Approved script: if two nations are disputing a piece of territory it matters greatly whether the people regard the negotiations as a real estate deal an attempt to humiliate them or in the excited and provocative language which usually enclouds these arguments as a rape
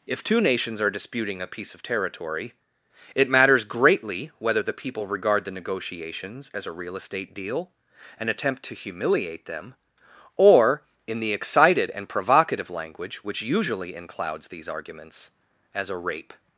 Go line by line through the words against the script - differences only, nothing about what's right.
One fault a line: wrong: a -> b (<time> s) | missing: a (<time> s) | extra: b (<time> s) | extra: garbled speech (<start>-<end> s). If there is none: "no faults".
no faults